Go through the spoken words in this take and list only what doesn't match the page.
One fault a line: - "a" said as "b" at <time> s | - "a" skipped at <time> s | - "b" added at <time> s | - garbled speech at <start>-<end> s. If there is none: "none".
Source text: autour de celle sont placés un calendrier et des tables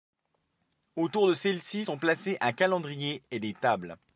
- "ci" added at 1.6 s